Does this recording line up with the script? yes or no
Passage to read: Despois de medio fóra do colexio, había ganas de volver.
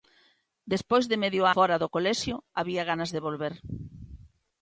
yes